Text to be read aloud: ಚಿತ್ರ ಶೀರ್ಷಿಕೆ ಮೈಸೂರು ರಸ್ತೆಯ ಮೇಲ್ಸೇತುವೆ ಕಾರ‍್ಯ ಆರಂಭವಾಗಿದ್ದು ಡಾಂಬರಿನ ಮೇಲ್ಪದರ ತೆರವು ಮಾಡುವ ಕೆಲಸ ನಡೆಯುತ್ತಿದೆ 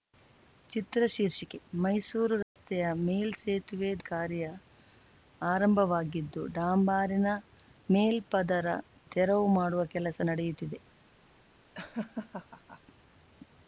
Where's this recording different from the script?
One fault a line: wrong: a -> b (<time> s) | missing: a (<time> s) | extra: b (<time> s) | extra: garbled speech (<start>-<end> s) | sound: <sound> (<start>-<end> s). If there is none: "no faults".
sound: dropout (2.4-2.6 s)
sound: laugh (11.7-12.8 s)